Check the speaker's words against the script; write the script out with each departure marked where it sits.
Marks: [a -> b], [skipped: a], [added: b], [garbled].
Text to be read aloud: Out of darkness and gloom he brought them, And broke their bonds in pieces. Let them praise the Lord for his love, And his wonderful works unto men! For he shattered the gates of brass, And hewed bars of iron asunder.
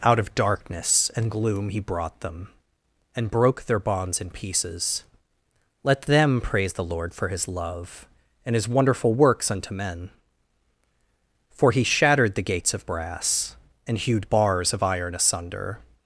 Out of darkness and gloom he brought them, And broke their bonds in pieces. Let them praise the Lord for his love, And his wonderful works unto men! For he shattered the gates of brass, And hewed bars of iron asunder.